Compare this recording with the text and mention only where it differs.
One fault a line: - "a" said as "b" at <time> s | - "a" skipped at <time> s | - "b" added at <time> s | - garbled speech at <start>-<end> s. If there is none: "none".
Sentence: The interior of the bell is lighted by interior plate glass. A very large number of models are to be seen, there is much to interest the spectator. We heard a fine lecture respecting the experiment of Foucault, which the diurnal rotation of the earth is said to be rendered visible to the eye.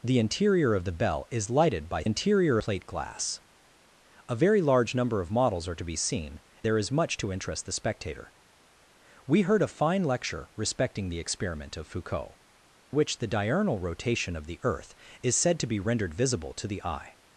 none